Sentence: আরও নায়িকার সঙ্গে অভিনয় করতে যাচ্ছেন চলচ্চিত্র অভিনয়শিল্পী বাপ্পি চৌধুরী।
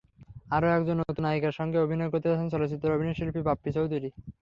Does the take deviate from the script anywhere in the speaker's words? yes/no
yes